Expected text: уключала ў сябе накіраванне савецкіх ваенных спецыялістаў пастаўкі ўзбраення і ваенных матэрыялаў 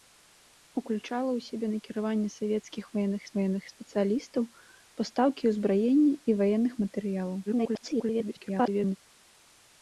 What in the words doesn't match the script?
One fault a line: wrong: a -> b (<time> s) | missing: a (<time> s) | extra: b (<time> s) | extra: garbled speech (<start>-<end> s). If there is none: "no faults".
extra: ваенных (3.4 s)
extra: garbled speech (7.5-9.0 s)